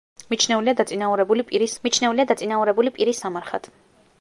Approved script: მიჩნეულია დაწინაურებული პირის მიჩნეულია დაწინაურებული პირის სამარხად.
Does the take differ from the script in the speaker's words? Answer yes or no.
no